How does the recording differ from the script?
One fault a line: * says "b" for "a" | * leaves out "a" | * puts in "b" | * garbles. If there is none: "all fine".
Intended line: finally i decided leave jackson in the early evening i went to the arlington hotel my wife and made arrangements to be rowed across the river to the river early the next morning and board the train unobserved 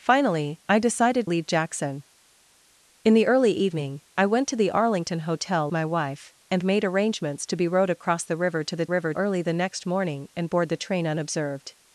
all fine